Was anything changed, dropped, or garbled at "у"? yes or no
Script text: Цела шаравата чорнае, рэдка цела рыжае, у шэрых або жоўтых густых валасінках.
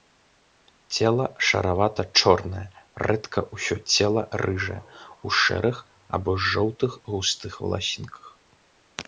no